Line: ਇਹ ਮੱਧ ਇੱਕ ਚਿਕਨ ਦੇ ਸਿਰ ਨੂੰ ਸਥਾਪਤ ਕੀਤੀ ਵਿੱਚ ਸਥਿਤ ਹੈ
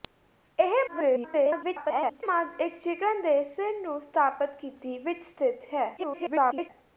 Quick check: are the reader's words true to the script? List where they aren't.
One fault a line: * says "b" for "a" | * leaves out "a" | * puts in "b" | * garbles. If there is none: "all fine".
* garbles
* garbles